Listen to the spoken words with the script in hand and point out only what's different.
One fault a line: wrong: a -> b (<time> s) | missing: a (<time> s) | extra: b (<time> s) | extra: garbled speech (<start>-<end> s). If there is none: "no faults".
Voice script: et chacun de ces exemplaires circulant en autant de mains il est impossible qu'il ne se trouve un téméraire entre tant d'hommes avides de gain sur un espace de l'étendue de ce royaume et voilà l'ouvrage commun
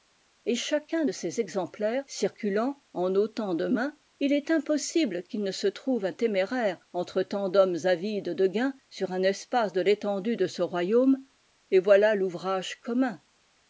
no faults